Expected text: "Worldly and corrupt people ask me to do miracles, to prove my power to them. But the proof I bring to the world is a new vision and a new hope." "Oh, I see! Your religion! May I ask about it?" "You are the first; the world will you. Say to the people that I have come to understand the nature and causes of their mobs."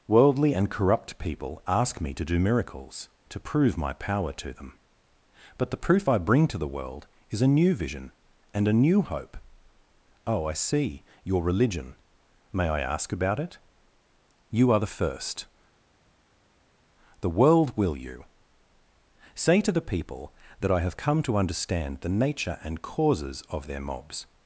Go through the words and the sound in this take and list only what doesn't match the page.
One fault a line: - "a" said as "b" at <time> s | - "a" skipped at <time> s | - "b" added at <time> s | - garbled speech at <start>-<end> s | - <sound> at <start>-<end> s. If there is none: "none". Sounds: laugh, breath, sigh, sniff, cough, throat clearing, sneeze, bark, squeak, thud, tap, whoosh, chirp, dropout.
none